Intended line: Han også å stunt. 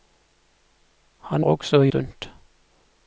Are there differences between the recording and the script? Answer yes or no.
no